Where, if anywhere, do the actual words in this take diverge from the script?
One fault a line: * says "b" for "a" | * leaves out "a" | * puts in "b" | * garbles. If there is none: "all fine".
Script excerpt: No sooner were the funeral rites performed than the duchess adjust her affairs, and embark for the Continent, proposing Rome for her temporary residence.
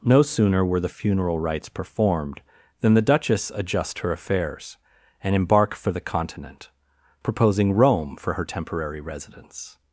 all fine